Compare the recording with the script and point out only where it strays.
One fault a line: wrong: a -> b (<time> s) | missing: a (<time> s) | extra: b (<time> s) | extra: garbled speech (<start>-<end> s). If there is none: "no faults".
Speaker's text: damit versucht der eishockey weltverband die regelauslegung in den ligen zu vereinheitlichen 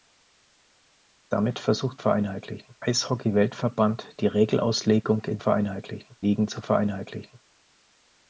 wrong: der -> vereinheitlichen (2.0 s)
wrong: den -> vereinheitlichen (5.4 s)